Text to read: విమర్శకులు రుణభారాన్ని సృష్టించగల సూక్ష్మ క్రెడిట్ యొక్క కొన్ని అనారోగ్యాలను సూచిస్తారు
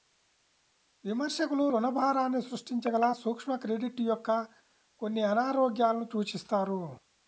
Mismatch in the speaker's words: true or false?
false